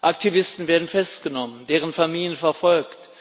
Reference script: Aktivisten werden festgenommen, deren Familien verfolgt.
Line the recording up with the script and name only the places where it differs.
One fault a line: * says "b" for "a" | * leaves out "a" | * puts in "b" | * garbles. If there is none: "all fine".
all fine